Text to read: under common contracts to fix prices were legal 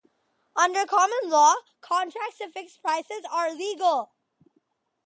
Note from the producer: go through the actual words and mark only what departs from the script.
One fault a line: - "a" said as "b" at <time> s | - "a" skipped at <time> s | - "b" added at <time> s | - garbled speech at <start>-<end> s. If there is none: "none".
- "law" added at 1.3 s
- "were" said as "are" at 3.3 s